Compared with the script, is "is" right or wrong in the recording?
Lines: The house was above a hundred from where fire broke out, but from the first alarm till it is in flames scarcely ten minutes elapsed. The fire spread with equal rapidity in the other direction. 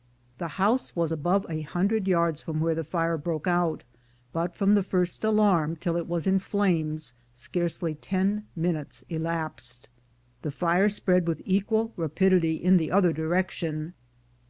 wrong